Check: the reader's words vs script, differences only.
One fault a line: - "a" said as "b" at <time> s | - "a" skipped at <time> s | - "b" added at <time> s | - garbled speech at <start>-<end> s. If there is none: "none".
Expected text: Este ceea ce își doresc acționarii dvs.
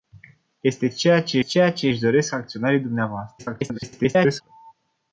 - "ceea ce" added at 1.4 s
- garbled speech at 3.4-4.4 s